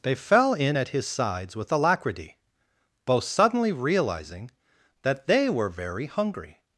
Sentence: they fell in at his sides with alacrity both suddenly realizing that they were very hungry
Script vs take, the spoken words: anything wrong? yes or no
no